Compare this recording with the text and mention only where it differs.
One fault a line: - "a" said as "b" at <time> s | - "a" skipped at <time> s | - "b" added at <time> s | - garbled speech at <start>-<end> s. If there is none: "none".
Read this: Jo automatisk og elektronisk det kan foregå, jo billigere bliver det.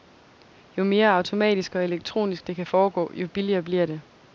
- "mere" added at 0.8 s